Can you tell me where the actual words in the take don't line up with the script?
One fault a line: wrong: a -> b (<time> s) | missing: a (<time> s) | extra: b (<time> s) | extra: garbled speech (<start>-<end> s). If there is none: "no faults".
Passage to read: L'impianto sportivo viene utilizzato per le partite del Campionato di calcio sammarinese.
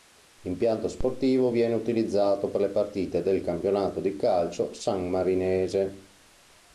no faults